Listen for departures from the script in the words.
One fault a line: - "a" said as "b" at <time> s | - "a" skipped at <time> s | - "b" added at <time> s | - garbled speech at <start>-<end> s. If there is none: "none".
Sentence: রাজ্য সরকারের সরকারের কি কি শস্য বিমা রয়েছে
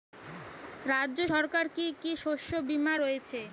- "সরকারের" skipped at 1.7 s